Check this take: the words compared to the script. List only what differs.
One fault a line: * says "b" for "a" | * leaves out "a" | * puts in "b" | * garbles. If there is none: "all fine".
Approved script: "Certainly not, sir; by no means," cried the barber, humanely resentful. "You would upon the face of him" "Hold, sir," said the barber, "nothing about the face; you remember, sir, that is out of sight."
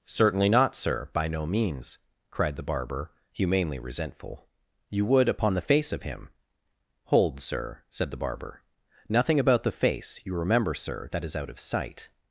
all fine